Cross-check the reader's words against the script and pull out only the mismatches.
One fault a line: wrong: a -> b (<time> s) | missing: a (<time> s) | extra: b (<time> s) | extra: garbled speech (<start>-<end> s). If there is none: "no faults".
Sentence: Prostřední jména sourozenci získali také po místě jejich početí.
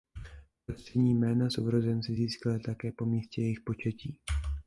no faults